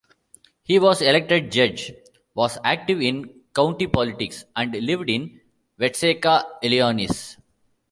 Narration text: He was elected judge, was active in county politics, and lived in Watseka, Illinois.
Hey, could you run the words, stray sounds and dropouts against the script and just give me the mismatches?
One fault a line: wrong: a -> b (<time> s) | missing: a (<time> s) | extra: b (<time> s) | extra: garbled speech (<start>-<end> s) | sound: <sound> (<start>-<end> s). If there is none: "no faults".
no faults